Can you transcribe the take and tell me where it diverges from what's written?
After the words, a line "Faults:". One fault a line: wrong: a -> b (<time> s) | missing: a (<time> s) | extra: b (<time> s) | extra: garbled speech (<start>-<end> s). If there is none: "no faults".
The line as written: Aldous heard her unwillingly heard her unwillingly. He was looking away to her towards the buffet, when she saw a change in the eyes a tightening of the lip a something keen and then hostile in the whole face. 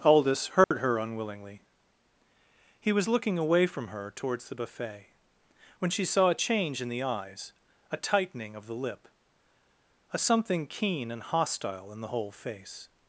Aldous heard her unwillingly. He was looking away from her towards the buffet, when she saw a change in the eyes a tightening of the lip a something keen and hostile in the whole face.
Faults:
missing: heard her unwillingly (1.6 s)
wrong: to -> from (3.7 s)
missing: then (11.2 s)